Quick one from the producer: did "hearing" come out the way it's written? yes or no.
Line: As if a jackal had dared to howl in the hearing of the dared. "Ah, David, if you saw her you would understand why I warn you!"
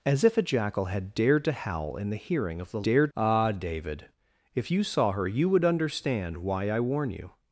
yes